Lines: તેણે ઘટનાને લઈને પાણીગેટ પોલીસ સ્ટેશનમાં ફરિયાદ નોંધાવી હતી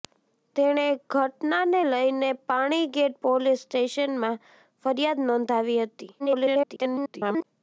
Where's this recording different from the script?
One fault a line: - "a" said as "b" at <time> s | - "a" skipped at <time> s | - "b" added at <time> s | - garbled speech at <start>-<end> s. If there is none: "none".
- garbled speech at 6.2-7.4 s